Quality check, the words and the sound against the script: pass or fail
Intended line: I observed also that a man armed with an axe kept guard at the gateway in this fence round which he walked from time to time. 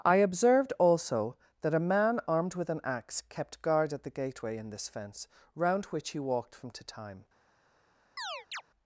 fail